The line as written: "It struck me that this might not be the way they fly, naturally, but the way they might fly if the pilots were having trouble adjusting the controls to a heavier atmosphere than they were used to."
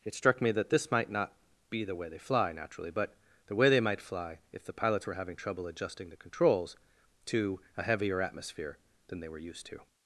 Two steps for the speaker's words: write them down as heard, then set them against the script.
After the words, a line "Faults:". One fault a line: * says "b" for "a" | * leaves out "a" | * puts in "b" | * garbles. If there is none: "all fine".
"It struck me that this might not be the way they fly, naturally, but the way they might fly if the pilots were having trouble adjusting the controls to a heavier atmosphere than they were used to."
Faults:
all fine